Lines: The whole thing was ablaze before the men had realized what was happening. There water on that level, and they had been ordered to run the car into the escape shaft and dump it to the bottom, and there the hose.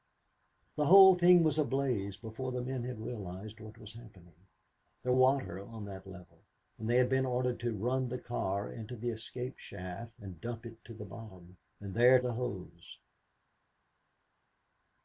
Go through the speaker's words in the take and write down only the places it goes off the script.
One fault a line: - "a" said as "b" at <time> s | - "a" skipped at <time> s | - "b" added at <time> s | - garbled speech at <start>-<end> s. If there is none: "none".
none